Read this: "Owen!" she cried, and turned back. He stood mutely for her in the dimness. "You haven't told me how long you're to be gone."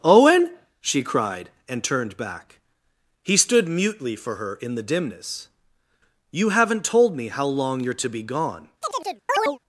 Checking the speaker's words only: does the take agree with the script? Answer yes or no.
yes